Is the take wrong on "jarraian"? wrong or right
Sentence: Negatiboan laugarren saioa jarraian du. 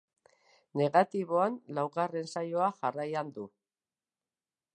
right